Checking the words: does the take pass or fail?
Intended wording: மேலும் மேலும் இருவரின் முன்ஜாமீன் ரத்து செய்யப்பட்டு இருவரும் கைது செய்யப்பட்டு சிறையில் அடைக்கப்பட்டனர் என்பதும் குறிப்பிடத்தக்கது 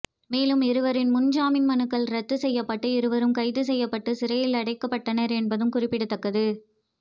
fail